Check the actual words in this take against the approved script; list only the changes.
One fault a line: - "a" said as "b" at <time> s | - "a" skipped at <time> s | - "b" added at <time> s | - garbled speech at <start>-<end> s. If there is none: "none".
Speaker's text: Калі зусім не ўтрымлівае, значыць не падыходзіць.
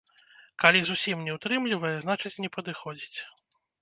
none